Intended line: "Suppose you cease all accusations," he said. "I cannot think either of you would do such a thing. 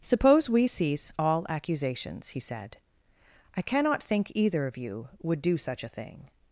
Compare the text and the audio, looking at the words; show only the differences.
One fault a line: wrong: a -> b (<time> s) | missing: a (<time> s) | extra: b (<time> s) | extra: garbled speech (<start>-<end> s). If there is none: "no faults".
wrong: you -> we (0.5 s)